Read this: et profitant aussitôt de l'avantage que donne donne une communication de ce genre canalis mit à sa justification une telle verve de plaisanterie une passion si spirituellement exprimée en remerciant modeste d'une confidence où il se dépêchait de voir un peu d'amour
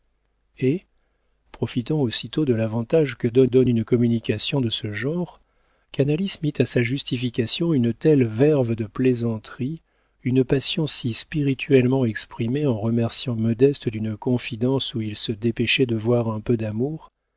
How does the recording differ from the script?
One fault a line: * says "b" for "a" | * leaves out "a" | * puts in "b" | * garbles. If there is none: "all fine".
all fine